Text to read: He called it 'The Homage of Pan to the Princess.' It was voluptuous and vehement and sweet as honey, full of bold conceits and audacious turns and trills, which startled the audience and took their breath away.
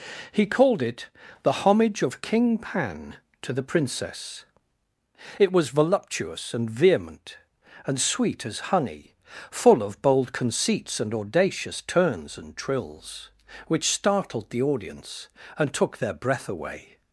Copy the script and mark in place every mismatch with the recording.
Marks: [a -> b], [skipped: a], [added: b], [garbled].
He called it 'The Homage of [added: King] Pan to the Princess.' It was voluptuous and vehement and sweet as honey, full of bold conceits and audacious turns and trills, which startled the audience and took their breath away.